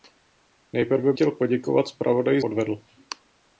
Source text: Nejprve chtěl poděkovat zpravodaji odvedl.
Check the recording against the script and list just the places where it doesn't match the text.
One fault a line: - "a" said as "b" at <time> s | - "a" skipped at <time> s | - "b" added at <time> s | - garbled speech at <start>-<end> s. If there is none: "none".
none